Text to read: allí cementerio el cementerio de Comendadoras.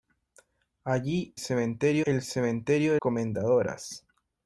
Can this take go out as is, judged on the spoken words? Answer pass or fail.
pass